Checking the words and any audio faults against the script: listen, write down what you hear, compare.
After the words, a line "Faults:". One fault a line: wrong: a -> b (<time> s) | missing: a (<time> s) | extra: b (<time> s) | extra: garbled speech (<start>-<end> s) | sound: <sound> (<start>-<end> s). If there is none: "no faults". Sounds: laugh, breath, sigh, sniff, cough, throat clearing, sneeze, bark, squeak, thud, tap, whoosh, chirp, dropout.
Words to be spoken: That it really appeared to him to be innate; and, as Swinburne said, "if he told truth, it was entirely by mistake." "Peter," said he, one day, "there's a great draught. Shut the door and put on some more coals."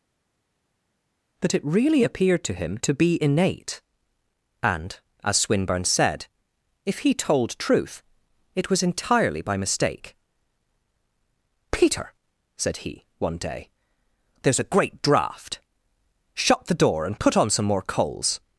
That it really appeared to him to be innate; and, as Swinburne said, "if he told truth, it was entirely by mistake." "Peter," said he, one day, "there's a great draught. Shut the door and put on some more coals."
Faults:
no faults